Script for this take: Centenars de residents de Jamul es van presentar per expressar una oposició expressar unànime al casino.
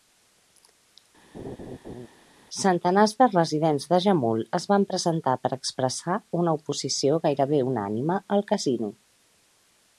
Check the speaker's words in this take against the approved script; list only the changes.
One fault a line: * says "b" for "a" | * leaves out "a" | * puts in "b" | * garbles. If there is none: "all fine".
* says "gairebé" for "expressar"